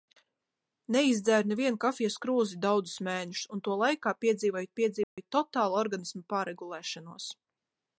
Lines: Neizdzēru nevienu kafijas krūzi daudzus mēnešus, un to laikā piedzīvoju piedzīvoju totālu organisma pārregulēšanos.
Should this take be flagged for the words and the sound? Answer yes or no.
yes